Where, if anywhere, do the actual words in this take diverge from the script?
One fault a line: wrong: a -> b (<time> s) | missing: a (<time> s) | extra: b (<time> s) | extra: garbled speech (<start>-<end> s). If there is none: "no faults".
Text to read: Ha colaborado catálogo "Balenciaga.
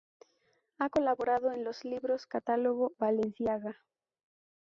extra: en los libros (1.5 s)